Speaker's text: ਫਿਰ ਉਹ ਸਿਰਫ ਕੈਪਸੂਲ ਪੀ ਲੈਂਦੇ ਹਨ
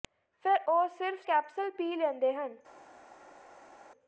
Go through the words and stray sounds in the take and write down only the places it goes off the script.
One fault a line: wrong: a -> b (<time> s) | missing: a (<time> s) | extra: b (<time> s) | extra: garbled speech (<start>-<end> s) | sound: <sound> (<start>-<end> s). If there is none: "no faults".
no faults